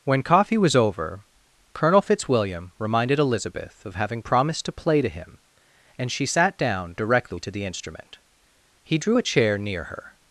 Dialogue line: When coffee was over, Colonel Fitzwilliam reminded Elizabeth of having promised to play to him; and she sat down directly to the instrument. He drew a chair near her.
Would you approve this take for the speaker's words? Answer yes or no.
yes